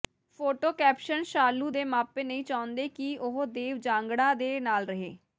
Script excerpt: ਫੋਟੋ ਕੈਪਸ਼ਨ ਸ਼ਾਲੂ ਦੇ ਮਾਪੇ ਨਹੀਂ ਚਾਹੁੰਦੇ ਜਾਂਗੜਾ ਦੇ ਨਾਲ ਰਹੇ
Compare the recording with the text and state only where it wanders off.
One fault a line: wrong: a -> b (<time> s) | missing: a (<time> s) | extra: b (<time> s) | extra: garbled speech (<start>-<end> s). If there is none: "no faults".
extra: ਕਿ ਉਹ ਦੇਵ (2.9 s)